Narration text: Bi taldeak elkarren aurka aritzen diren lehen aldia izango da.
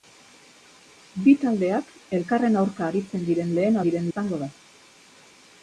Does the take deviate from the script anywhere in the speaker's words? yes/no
yes